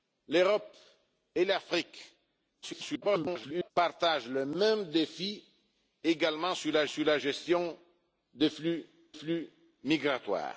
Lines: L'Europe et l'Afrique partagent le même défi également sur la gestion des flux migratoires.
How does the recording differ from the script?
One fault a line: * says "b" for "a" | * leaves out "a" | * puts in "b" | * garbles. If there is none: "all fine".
* garbles
* puts in "sur la"
* puts in "flux"